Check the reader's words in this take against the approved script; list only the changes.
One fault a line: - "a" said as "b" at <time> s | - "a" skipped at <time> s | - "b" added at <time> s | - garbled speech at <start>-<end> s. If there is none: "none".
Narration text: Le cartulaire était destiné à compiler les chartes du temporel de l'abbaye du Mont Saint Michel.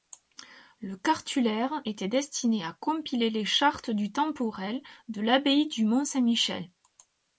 none